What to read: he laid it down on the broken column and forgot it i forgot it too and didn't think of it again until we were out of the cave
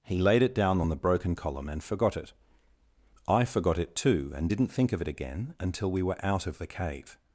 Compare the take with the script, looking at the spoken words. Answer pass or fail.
pass